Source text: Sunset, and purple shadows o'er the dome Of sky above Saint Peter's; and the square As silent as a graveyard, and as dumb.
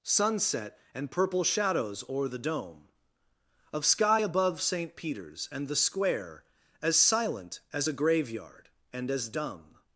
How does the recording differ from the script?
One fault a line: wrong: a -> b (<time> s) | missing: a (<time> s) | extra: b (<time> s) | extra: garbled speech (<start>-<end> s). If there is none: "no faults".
no faults